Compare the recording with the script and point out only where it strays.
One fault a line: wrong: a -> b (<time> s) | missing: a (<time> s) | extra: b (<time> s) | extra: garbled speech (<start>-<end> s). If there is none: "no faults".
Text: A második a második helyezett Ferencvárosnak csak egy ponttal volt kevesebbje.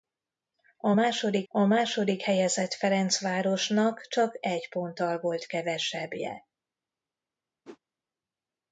no faults